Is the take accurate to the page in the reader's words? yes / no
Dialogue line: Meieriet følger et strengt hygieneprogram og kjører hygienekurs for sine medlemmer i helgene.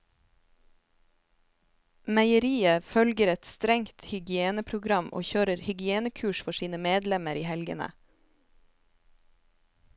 yes